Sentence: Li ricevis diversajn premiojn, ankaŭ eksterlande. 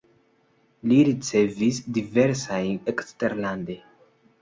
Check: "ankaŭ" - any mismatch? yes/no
yes